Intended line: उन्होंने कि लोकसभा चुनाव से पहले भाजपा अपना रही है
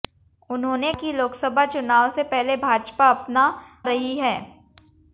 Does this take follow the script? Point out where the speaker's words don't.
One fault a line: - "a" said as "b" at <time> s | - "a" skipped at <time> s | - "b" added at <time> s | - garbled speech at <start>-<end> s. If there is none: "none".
none